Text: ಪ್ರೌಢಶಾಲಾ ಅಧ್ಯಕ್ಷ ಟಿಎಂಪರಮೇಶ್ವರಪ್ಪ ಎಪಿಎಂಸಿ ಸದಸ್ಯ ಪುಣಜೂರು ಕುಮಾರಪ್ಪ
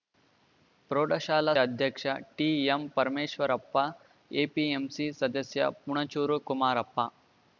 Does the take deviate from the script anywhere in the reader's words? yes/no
no